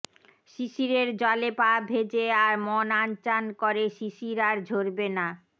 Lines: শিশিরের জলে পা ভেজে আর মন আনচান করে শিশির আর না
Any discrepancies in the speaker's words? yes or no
yes